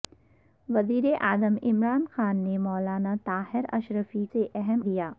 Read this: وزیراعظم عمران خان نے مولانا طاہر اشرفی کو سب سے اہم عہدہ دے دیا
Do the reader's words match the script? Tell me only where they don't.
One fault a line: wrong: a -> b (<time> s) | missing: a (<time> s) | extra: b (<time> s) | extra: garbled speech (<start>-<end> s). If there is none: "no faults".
missing: کو سب (4.2 s)
missing: عہدہ دے (4.9 s)